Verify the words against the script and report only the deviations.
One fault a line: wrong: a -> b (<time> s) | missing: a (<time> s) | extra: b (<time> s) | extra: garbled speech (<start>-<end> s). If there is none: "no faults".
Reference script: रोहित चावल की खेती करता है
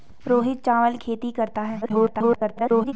missing: की (1.0 s)
extra: garbled speech (1.8-2.9 s)